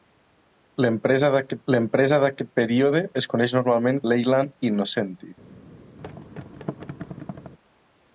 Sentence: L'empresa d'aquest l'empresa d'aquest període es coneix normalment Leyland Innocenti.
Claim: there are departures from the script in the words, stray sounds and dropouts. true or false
true